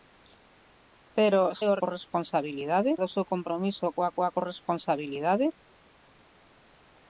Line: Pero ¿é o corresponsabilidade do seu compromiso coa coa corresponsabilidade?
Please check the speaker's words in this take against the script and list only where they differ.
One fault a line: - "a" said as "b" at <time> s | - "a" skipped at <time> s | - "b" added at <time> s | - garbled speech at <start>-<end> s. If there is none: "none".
none